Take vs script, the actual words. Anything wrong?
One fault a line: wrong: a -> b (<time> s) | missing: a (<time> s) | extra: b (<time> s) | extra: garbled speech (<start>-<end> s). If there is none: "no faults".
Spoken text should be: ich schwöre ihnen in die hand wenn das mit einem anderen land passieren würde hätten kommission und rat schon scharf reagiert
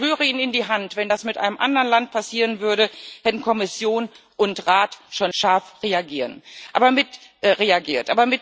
no faults